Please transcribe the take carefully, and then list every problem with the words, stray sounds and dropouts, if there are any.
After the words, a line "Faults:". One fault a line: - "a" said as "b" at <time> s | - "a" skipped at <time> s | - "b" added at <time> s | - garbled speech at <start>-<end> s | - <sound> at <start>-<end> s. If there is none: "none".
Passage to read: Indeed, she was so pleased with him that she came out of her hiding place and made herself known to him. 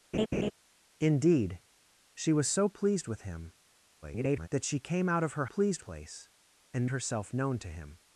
Indeed, she was so pleased with him [garbled] that she came out of her pleased place and herself known to him.
Faults:
- laugh at 0.1-0.5 s
- garbled speech at 4.0-4.5 s
- "hiding" said as "pleased" at 5.4 s
- "made" skipped at 6.9 s